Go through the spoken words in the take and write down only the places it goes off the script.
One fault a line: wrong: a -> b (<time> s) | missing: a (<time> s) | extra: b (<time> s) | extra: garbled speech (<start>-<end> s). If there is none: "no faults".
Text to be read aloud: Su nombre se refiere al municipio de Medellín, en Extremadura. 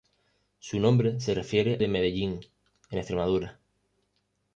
missing: al municipio (1.8 s)